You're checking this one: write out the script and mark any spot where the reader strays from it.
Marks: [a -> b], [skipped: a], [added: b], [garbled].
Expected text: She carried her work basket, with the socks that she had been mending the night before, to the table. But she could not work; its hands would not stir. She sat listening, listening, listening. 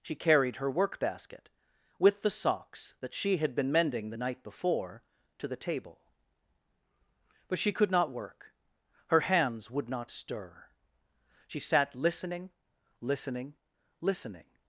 She carried her work basket, with the socks that she had been mending the night before, to the table. But she could not work; [its -> her] hands would not stir. She sat listening, listening, listening.